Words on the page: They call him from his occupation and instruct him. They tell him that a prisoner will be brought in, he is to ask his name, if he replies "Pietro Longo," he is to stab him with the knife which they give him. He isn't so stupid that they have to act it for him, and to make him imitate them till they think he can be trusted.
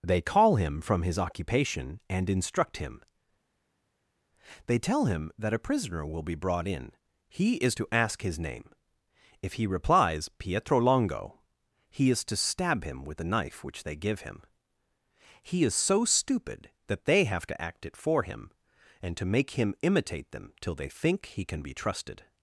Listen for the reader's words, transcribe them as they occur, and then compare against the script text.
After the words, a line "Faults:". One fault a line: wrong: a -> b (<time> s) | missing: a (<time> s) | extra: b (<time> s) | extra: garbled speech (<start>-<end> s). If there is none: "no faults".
They call him from his occupation and instruct him. They tell him that a prisoner will be brought in, he is to ask his name, if he replies "Pietro Longo," he is to stab him with the knife which they give him. He is so stupid that they have to act it for him, and to make him imitate them till they think he can be trusted.
Faults:
wrong: isn't -> is (15.6 s)